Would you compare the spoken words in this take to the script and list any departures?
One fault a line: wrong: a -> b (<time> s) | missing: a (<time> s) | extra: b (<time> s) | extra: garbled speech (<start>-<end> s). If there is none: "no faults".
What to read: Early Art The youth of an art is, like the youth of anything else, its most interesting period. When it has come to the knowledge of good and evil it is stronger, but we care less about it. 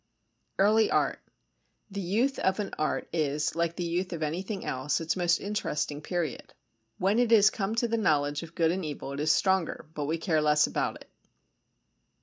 no faults